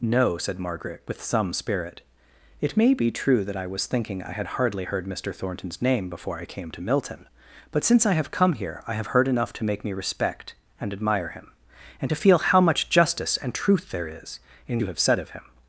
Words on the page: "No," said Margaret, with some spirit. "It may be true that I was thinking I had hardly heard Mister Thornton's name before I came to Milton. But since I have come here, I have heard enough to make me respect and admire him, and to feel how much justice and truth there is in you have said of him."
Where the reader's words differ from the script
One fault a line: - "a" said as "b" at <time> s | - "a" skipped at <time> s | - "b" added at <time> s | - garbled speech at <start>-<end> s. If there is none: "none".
none